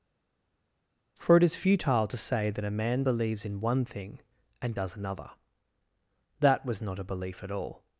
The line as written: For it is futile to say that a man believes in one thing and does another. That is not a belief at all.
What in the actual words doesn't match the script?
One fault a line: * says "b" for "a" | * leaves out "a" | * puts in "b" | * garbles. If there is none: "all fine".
* says "was" for "is"